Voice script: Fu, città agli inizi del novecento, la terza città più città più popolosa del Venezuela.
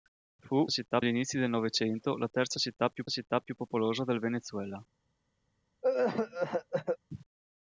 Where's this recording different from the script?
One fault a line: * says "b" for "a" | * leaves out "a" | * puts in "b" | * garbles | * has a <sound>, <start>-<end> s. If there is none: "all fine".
* has a cough, 5.8-7.0 s